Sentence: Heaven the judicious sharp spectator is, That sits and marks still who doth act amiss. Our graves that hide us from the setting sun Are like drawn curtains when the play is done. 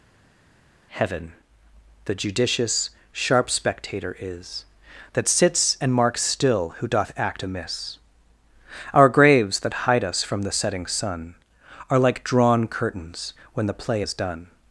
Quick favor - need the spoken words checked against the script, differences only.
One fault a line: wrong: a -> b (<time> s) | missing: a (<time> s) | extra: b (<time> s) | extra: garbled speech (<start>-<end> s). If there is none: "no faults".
no faults